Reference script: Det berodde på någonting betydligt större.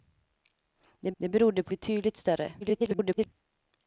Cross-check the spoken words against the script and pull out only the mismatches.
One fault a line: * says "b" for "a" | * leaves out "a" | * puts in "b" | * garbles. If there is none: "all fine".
* puts in "det"
* leaves out "någonting"
* garbles